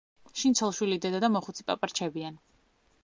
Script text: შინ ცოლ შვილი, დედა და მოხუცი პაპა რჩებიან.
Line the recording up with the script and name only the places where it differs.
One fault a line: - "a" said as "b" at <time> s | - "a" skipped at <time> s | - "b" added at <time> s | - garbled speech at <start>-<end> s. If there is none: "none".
none